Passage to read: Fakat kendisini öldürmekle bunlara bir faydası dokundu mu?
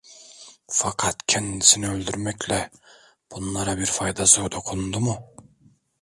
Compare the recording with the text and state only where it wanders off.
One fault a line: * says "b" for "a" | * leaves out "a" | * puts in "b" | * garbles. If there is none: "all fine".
all fine